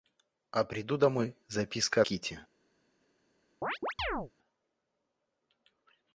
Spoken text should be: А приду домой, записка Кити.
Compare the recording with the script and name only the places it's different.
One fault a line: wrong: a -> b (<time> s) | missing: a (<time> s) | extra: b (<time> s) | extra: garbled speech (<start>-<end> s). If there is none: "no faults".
no faults